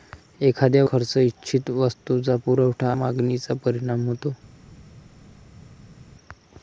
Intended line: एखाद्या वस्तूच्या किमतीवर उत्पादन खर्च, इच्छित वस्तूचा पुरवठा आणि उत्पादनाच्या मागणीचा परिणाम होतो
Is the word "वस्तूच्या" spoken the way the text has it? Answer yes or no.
no